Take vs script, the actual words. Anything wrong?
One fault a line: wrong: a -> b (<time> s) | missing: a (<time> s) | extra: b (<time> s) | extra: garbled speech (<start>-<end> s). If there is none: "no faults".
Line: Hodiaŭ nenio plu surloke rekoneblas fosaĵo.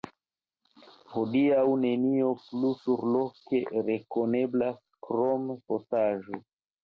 extra: krom (5.1 s)